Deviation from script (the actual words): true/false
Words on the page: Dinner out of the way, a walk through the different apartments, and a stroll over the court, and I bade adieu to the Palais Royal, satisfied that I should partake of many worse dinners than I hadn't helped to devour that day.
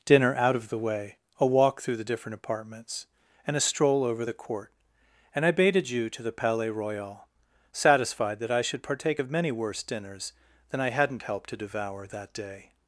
false